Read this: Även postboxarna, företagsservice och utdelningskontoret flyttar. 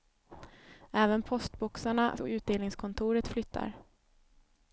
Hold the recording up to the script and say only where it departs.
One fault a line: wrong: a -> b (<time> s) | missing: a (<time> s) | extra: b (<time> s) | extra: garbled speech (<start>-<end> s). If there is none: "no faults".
missing: företagsservice (2.2 s)